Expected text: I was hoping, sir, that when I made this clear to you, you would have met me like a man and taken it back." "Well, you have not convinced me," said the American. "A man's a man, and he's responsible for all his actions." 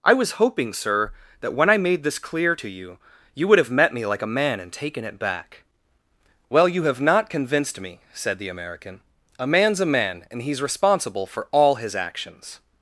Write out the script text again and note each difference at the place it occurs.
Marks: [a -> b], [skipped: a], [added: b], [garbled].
I was hoping, sir, that when I made this clear to you, you would have met me like a man and taken it back." "Well, you have not convinced me," said the American. "A man's a man, and he's responsible for all his actions."